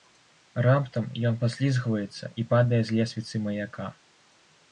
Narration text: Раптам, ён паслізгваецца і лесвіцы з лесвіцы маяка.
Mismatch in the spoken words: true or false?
true